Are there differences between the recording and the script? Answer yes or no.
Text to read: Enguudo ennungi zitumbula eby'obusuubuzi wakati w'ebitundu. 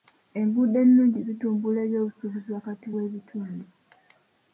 no